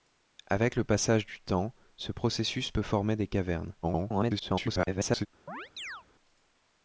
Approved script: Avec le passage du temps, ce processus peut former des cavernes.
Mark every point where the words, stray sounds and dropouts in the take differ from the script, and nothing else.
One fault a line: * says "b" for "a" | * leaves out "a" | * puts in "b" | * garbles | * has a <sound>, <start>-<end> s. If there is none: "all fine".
* garbles
* has a chirp, 5.5-6.0 s